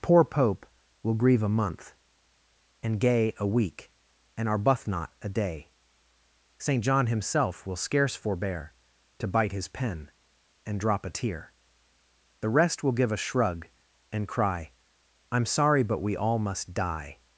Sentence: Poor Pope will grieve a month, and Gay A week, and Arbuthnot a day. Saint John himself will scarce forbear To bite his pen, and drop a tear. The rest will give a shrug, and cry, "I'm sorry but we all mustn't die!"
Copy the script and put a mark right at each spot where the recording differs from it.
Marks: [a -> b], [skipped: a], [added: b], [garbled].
Poor Pope will grieve a month, and Gay A week, and Arbuthnot a day. Saint John himself will scarce forbear To bite his pen, and drop a tear. The rest will give a shrug, and cry, "I'm sorry but we all [mustn't -> must] die!"